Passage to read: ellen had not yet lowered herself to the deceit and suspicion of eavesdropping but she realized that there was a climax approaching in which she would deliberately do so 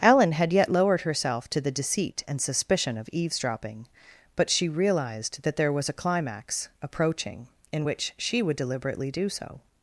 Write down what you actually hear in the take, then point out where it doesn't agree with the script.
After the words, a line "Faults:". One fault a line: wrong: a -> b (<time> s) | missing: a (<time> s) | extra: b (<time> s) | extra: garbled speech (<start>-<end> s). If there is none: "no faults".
ellen had yet lowered herself to the deceit and suspicion of eavesdropping but she realized that there was a climax approaching in which she would deliberately do so
Faults:
missing: not (0.5 s)